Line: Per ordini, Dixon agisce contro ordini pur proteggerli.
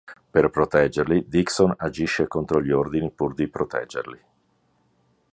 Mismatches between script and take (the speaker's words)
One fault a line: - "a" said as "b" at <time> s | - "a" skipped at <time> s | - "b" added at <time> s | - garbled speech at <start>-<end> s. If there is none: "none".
- "ordini" said as "proteggerli" at 0.5 s
- "gli" added at 2.6 s
- "di" added at 3.4 s